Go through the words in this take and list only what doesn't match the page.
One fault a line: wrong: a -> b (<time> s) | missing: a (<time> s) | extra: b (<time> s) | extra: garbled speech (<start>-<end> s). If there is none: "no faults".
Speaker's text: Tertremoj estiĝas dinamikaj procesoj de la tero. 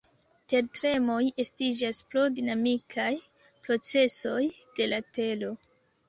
extra: pro (2.1 s)